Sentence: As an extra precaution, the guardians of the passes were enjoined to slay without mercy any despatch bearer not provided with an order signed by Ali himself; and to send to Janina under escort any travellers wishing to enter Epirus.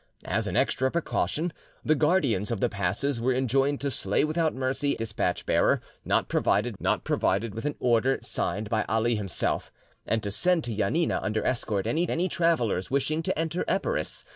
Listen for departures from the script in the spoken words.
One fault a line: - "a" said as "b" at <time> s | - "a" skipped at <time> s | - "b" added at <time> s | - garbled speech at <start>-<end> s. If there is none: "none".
- "any" skipped at 5.0 s
- "not provided" added at 6.8 s
- "any" added at 12.1 s